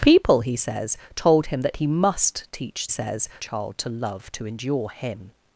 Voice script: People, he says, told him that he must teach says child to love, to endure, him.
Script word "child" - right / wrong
right